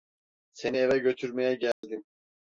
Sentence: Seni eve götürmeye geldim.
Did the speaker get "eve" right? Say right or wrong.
right